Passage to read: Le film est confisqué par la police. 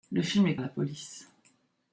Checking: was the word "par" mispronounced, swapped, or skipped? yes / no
yes